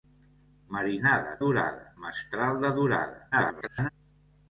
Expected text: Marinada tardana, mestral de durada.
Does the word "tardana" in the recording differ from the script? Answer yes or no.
yes